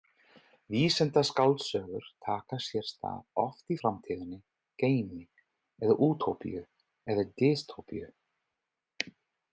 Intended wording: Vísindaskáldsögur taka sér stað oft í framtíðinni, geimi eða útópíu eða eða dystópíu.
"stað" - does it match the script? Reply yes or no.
yes